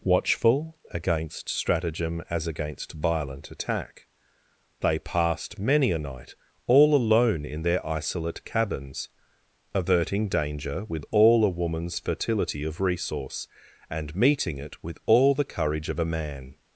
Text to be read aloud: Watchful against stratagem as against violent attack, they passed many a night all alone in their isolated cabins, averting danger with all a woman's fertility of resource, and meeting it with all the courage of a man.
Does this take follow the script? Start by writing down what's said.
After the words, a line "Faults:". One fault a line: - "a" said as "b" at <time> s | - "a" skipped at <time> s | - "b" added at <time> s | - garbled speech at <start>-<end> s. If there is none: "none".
Watchful against stratagem as against violent attack, they passed many a night all alone in their isolate cabins, averting danger with all a woman's fertility of resource, and meeting it with all the courage of a man.
Faults:
- "isolated" said as "isolate" at 7.8 s